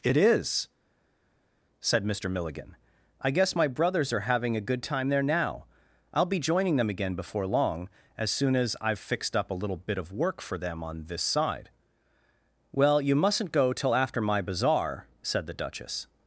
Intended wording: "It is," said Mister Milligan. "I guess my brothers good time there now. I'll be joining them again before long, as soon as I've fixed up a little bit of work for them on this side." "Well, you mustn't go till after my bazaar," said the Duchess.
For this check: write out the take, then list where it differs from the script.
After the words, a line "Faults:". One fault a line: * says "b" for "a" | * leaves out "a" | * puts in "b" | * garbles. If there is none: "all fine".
"It is," said Mister Milligan. "I guess my brothers are having a good time there now. I'll be joining them again before long, as soon as I've fixed up a little bit of work for them on this side." "Well, you mustn't go till after my bazaar," said the Duchess.
Faults:
* puts in "are having a"